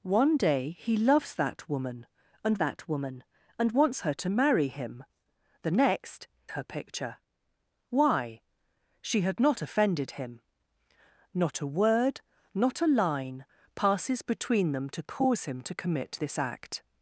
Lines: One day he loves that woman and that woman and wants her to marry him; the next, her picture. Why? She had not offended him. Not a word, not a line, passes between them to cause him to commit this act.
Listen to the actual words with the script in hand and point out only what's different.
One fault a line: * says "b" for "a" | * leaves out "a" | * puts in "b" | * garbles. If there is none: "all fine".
all fine